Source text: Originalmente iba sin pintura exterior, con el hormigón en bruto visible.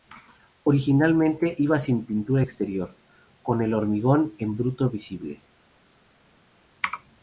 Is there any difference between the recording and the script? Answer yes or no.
no